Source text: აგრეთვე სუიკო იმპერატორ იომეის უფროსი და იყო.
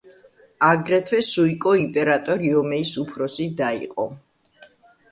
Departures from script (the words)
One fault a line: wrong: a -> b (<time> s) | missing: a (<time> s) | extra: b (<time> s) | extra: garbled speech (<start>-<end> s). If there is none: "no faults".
no faults